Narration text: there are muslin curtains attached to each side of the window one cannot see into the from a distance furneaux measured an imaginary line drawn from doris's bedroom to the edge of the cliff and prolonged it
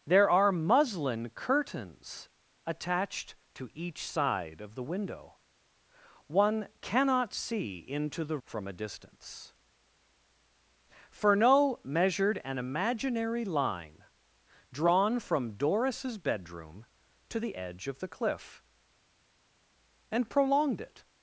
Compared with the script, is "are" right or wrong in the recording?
right